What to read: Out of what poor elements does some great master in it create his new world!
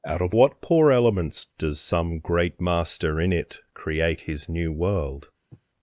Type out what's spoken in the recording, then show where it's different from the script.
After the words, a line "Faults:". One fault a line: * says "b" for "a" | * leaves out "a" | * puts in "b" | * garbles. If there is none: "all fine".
Out of what poor elements does some great master in it create his new world!
Faults:
all fine